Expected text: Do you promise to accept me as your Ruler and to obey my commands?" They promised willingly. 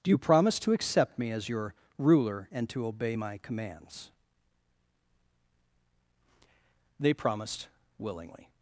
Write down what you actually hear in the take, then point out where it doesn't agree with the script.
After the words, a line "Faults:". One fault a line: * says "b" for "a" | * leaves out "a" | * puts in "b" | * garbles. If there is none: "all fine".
Do you promise to accept me as your Ruler and to obey my commands?" They promised willingly.
Faults:
all fine